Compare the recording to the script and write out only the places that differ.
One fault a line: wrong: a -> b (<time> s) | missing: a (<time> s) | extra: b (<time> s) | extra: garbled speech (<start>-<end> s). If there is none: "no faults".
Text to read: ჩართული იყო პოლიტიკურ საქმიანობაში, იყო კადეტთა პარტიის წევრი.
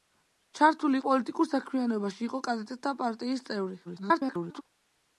missing: იყო (1.0 s)
extra: garbled speech (3.8-4.6 s)